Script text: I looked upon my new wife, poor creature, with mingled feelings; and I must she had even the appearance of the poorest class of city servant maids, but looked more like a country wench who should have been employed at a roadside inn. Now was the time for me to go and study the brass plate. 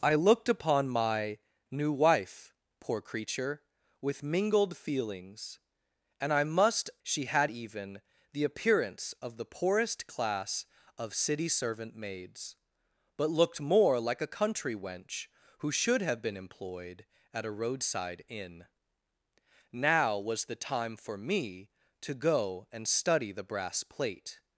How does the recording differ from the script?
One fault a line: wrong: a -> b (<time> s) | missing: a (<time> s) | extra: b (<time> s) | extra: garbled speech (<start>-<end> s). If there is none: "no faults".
no faults